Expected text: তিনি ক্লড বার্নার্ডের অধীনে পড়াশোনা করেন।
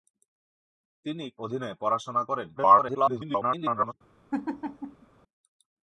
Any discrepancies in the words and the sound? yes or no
yes